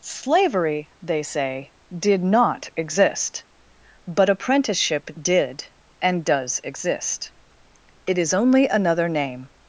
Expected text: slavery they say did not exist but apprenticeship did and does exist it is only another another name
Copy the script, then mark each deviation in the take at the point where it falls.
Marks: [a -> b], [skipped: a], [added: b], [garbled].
slavery they say did not exist but apprenticeship did and does exist it is only another [skipped: another] name